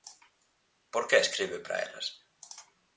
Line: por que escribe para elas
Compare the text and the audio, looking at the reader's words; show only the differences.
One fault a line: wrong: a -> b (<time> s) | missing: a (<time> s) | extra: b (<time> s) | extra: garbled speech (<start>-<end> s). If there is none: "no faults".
no faults